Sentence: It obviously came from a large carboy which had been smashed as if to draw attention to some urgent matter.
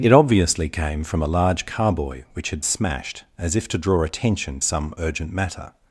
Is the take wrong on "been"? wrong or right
wrong